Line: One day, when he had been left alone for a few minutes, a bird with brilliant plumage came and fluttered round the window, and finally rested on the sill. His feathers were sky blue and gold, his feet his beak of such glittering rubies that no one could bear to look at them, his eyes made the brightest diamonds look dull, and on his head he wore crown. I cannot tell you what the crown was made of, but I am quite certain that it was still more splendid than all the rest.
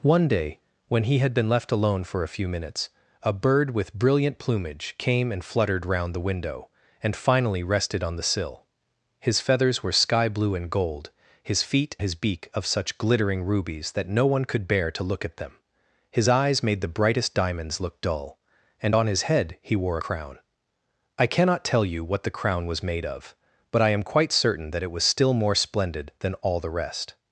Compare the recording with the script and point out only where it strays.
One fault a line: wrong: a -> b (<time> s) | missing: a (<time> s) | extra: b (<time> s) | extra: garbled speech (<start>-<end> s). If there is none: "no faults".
no faults